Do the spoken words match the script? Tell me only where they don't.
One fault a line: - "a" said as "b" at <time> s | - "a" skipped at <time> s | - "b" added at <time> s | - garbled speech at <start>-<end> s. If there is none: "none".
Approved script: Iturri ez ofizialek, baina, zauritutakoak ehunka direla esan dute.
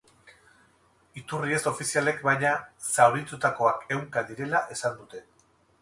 none